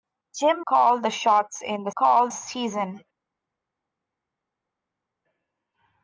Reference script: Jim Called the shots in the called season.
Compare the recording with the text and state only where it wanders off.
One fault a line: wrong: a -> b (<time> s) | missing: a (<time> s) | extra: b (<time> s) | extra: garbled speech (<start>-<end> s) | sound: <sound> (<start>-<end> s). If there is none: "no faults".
no faults